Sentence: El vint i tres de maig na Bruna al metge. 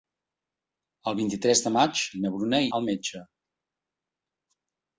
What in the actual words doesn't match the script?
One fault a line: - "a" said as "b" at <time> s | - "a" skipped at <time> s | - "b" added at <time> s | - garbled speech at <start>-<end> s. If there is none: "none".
none